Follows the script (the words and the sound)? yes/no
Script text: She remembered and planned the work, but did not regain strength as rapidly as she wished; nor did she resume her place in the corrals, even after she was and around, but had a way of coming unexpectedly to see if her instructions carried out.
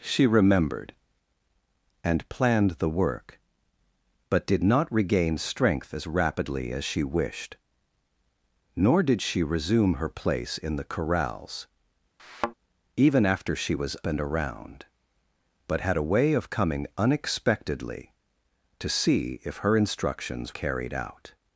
no